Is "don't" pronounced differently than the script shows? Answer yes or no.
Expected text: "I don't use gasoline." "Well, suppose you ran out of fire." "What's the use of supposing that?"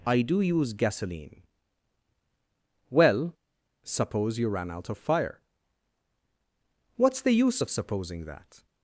yes